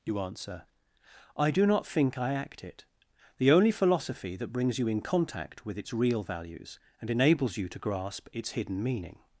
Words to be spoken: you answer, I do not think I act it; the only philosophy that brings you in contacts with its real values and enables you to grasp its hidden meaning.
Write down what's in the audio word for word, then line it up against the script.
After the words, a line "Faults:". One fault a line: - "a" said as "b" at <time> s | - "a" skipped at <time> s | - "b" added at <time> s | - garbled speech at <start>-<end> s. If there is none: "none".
you answer, I do not think I act it; the only philosophy that brings you in contact with its real values and enables you to grasp its hidden meaning.
Faults:
- "contacts" said as "contact" at 5.0 s